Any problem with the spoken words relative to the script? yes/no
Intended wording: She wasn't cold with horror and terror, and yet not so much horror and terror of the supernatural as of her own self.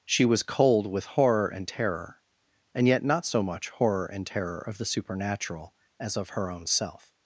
yes